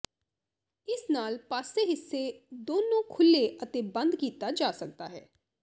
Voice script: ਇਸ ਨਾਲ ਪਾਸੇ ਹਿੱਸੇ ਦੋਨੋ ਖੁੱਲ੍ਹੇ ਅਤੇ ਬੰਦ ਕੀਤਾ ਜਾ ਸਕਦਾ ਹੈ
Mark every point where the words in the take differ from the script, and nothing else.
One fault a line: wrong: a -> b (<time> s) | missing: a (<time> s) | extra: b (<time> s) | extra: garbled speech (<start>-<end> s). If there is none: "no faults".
no faults